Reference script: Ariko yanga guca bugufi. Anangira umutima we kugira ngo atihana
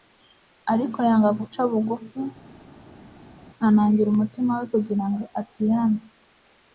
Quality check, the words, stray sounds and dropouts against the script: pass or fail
pass